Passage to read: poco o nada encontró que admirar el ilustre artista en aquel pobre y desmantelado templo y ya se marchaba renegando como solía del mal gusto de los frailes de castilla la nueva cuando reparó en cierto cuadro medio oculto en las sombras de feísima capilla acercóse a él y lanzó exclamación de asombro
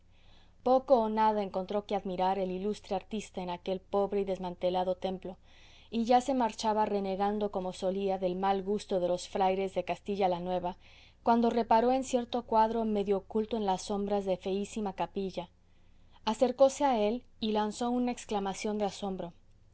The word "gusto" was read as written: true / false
true